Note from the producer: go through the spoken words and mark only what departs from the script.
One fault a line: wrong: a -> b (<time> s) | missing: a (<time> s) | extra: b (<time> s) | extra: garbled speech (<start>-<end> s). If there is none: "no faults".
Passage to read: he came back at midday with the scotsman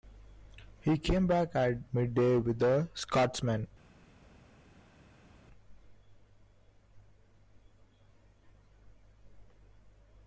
no faults